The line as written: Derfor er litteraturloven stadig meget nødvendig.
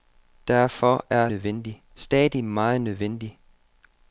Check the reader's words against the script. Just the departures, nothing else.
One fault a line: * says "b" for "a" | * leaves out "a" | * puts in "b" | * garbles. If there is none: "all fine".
* says "nødvendig" for "litteraturloven"